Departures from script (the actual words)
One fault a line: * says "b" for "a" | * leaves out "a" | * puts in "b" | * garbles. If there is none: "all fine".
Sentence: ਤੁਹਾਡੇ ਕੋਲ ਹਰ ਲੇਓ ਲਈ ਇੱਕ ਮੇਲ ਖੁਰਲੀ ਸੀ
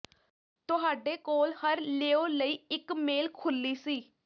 all fine